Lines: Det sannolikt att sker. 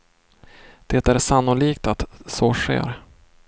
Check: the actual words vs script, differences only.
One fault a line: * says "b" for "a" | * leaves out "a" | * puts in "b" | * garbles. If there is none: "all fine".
* puts in "är"
* puts in "så"